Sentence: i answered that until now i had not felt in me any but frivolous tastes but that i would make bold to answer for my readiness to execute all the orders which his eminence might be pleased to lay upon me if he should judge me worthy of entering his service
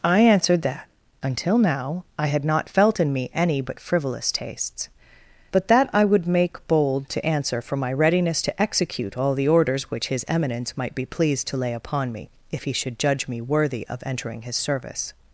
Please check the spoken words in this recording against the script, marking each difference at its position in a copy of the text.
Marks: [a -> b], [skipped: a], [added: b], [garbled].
i answered that until now i had not felt in me any but frivolous tastes but that i would make bold to answer for my readiness to execute all the orders which his eminence might be pleased to lay upon me if he should judge me worthy of entering his service